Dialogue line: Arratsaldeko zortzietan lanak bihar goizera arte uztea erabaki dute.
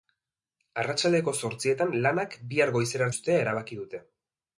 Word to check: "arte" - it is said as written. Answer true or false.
false